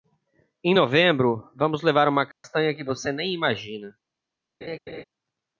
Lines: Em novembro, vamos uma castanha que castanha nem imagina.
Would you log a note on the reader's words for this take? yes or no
yes